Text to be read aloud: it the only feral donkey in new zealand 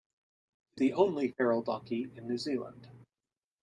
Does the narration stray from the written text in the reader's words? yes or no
no